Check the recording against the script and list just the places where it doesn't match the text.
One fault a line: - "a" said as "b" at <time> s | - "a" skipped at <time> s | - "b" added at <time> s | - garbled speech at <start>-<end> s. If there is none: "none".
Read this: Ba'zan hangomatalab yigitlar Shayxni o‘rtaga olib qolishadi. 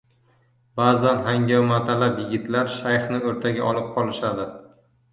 none